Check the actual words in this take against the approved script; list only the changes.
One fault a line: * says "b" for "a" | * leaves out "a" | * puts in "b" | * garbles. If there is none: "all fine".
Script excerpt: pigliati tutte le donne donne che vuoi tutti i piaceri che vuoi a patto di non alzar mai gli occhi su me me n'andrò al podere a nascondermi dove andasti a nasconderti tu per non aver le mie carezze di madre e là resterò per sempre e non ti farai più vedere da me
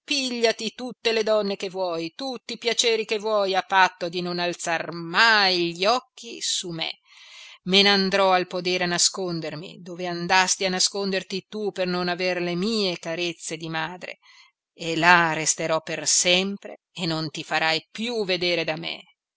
* leaves out "donne"